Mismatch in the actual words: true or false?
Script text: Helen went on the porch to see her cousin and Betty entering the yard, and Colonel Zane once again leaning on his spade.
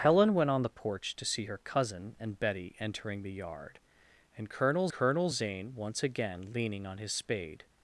true